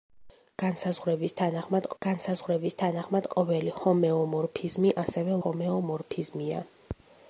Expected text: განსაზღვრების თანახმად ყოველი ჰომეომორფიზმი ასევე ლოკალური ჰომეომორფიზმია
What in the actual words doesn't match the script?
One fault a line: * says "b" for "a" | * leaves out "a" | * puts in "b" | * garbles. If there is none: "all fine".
* puts in "განსაზღვრების თანახმად"
* leaves out "ლოკალური"